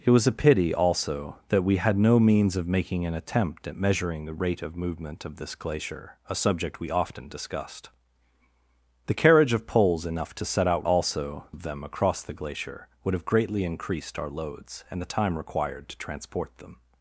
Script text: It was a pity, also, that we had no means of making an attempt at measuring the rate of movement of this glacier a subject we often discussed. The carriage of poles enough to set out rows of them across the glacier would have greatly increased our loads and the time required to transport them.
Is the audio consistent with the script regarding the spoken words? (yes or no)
no